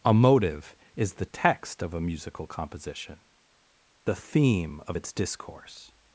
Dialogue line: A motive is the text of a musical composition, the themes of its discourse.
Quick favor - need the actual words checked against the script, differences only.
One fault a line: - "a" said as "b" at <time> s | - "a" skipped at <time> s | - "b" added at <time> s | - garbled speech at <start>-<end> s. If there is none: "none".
- "themes" said as "theme" at 4.2 s